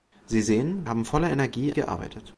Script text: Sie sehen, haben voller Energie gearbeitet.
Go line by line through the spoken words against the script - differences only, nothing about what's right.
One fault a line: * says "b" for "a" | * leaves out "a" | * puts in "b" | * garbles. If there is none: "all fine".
all fine